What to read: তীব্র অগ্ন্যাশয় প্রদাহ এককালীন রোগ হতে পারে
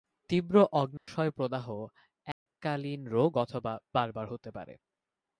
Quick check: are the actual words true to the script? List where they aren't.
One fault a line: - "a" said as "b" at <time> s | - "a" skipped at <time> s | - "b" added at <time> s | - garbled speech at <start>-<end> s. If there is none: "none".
- "অথবা বারবার" added at 3.4 s